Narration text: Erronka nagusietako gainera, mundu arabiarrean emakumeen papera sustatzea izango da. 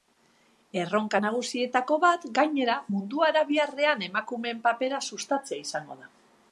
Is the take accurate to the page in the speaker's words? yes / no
no